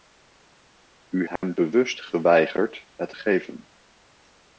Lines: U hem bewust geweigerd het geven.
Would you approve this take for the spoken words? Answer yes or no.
yes